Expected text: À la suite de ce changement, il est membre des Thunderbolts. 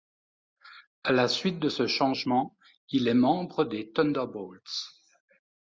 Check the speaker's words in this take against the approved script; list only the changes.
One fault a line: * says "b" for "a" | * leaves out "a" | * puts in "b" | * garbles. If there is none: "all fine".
all fine